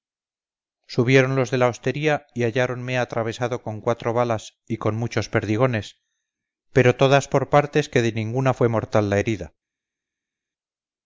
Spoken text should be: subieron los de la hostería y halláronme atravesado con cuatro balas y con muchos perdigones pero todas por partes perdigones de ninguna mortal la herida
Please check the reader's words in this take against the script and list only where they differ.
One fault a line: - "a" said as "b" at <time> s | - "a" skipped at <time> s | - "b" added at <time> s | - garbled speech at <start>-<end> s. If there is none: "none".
- "perdigones" said as "que" at 7.9 s
- "fue" added at 8.5 s